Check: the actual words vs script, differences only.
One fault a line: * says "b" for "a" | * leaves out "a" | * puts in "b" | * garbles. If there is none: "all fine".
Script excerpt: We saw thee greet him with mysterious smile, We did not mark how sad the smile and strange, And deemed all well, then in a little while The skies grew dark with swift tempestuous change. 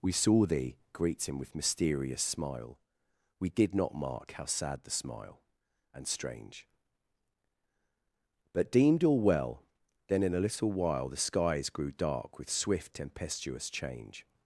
* says "But" for "And"